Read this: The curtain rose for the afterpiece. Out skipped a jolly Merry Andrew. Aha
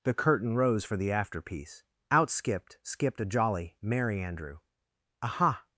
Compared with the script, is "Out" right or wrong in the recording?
right